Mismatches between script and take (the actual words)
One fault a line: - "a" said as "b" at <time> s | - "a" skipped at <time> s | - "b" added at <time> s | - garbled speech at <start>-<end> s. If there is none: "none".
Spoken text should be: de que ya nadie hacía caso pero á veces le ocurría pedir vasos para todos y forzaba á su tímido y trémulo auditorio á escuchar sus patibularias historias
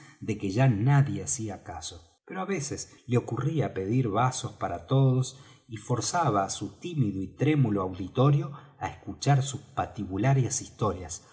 none